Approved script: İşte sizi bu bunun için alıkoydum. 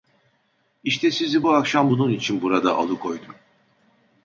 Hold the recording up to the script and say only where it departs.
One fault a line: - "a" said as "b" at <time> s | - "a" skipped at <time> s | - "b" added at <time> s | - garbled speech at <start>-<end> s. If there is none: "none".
- "akşam" added at 1.5 s
- "burada" added at 2.4 s